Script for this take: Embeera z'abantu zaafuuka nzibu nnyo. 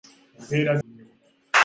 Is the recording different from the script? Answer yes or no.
yes